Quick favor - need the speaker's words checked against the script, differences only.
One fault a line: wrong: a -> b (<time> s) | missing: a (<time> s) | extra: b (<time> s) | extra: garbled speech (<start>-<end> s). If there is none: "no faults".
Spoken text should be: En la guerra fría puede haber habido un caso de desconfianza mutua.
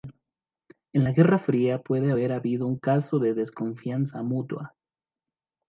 no faults